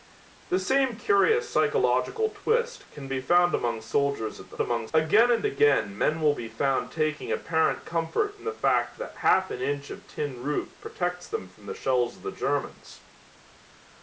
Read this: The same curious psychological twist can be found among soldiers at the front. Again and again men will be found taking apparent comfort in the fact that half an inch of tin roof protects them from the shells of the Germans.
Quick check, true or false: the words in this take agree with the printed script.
false